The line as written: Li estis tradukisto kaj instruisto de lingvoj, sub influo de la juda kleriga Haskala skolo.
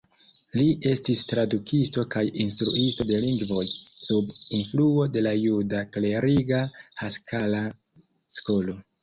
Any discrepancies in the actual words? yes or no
no